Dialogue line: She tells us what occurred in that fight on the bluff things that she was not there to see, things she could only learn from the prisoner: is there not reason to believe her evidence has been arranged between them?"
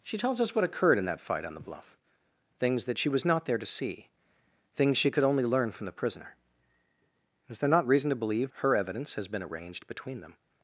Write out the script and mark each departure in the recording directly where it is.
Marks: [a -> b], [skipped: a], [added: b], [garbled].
She tells us what occurred in that fight on the bluff things that she was not there to see, things she could only learn from the prisoner: is there not reason to believe her evidence has been arranged between them?"